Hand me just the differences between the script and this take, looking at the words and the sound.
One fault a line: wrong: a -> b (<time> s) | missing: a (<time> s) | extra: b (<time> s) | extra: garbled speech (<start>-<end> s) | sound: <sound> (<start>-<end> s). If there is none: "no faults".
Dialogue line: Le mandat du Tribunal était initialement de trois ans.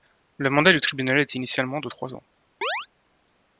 sound: chirp (2.6-2.9 s)